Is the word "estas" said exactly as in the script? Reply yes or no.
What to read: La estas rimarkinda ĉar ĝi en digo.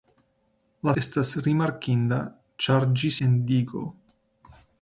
yes